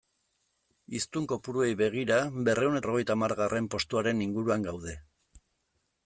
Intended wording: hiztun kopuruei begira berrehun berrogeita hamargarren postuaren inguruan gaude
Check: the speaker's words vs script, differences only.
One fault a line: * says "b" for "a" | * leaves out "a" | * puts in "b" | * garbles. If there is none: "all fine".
all fine